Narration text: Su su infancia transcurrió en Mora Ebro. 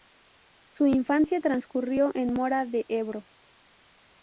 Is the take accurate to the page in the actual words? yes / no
no